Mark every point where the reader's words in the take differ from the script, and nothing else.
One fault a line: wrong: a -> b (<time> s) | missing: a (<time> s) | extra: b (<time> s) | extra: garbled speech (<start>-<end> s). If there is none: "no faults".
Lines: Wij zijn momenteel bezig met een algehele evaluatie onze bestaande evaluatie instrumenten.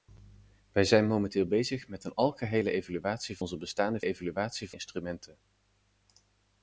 no faults